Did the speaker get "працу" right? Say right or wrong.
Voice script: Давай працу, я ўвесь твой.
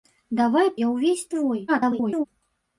wrong